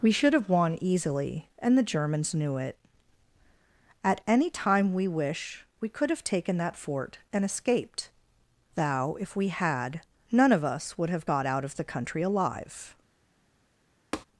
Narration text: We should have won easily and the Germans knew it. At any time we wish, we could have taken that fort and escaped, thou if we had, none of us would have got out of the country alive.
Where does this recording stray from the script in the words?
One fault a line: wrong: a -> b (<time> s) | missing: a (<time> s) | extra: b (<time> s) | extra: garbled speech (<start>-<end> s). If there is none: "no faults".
no faults